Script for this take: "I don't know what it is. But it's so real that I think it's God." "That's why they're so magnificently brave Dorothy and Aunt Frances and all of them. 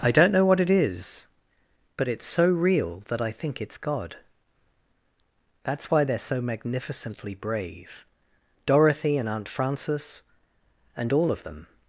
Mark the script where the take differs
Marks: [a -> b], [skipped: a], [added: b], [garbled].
"I don't know what it is. But it's so real that I think it's God." "That's why they're so magnificently brave Dorothy and Aunt Frances and all of them.